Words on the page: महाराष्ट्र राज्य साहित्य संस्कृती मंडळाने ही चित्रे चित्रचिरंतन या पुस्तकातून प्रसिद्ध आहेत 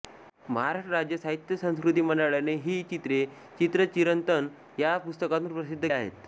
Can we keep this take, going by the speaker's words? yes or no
yes